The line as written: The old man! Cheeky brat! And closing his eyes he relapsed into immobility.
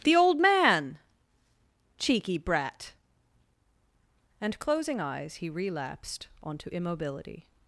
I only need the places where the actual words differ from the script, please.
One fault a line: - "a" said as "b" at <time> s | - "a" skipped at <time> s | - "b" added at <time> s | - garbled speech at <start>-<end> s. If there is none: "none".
- "his" skipped at 5.0 s
- "into" said as "onto" at 6.4 s